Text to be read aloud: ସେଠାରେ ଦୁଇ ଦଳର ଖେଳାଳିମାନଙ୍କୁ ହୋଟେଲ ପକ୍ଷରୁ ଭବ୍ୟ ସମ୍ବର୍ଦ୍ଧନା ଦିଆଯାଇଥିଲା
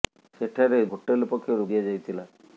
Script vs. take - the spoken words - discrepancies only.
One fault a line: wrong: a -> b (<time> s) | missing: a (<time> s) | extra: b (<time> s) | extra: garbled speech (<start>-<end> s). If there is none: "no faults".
missing: ଦୁଇ ଦଳର ଖେଳାଳିମାନଙ୍କୁ (0.8 s)
missing: ଭବ୍ୟ ସମ୍ବର୍ଦ୍ଧନା (1.7 s)